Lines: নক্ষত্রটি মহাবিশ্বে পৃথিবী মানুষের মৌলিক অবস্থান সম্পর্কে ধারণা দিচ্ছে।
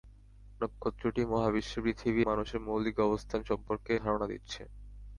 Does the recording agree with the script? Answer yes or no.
yes